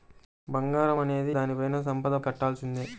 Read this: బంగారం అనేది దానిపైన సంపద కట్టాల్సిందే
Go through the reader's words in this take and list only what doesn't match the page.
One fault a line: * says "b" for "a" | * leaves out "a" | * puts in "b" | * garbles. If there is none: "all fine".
all fine